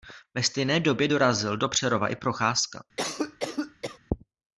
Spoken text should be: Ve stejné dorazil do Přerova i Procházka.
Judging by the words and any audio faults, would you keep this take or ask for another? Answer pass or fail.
fail